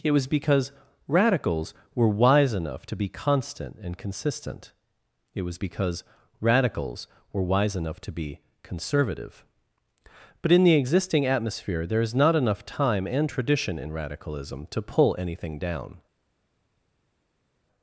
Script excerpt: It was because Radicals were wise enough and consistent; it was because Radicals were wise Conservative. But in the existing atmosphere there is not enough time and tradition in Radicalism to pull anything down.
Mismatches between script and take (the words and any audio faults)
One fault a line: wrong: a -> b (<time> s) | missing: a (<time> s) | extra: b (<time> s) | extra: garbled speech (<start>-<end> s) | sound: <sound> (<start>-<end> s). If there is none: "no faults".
extra: to be constant (2.9 s)
extra: enough to be (7.7 s)